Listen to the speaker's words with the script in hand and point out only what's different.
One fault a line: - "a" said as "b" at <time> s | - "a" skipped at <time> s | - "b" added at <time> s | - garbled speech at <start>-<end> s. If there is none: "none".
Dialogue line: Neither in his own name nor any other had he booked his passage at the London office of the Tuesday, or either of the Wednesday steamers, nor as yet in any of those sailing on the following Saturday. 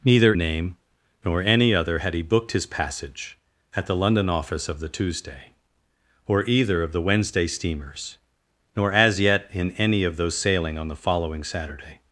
- "in his own" skipped at 0.3 s